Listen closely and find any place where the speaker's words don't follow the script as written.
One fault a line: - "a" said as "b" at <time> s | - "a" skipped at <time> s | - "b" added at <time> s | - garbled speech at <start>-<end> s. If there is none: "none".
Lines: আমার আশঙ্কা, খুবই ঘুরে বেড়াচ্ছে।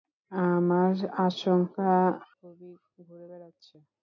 none